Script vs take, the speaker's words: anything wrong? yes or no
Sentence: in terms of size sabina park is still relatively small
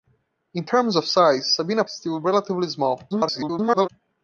yes